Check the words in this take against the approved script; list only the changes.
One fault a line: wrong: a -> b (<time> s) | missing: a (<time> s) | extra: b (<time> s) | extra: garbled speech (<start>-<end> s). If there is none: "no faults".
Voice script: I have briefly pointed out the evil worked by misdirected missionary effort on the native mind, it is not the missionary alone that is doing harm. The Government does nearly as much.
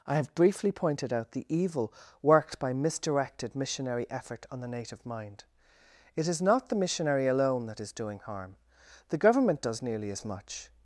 no faults